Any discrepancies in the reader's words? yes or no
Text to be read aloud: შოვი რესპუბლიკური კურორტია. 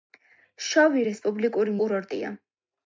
no